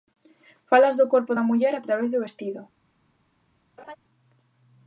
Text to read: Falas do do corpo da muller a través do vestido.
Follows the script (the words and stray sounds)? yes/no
no